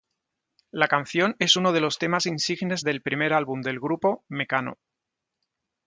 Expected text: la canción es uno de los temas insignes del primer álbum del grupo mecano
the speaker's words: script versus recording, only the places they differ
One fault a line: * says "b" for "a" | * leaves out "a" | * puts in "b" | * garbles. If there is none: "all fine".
all fine